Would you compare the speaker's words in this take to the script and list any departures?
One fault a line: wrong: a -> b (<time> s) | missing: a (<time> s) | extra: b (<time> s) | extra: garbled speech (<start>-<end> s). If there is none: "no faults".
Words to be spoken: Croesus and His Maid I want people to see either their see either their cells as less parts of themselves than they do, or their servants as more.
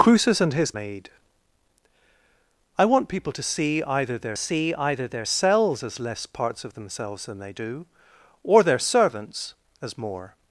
no faults